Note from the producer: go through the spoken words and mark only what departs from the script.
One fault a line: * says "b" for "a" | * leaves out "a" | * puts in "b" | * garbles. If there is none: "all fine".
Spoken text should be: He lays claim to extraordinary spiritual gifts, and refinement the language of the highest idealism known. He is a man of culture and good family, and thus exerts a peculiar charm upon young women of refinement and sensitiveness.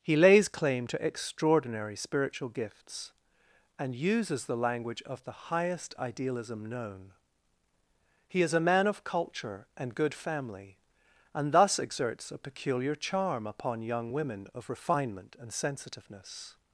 * says "uses" for "refinement"